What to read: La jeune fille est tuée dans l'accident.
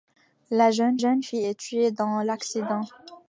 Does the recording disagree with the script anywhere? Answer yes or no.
yes